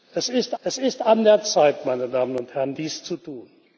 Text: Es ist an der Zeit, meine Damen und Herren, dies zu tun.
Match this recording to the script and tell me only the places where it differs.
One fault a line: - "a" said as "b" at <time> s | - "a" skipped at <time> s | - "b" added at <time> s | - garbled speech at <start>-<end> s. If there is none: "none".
- "es ist" added at 0.6 s